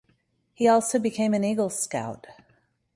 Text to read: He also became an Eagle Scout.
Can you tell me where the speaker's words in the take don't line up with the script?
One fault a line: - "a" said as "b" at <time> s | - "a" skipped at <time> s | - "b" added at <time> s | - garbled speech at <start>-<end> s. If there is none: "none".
none